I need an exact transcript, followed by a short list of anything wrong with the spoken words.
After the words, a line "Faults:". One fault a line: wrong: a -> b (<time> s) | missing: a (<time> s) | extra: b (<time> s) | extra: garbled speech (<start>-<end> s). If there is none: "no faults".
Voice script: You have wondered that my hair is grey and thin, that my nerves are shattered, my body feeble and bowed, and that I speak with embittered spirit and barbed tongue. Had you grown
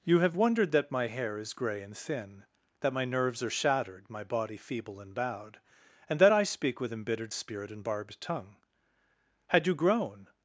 You have wondered that my hair is grey and thin, that my nerves are shattered, my body feeble and bowed, and that I speak with embittered spirit and barbed tongue. Had you grown
Faults:
no faults